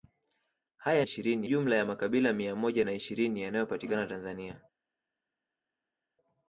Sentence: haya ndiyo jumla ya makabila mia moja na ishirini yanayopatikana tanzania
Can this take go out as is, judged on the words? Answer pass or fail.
fail